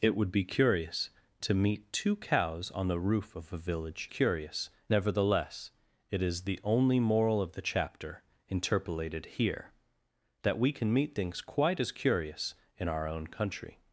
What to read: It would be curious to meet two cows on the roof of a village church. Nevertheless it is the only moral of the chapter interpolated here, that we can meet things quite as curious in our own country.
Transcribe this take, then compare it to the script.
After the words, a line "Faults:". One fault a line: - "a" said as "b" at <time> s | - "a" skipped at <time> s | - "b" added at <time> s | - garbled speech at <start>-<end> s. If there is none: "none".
It would be curious to meet two cows on the roof of a village curious. Nevertheless it is the only moral of the chapter interpolated here, that we can meet things quite as curious in our own country.
Faults:
- "church" said as "curious" at 4.1 s